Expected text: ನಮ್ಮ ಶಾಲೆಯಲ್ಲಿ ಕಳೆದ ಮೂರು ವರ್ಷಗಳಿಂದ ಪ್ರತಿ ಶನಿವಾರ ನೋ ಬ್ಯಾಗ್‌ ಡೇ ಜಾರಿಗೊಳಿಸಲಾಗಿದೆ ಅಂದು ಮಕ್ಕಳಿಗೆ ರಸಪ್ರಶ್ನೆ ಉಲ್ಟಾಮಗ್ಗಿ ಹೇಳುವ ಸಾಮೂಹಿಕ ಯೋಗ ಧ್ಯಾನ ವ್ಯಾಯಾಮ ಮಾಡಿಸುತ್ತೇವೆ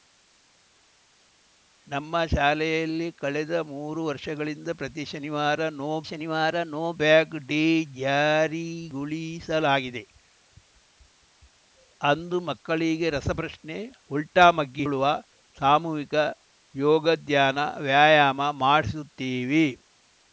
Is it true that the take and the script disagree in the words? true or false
true